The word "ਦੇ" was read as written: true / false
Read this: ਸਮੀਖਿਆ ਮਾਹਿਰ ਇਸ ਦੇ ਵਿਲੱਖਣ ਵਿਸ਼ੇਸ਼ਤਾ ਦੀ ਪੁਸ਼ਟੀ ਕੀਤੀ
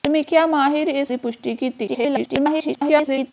false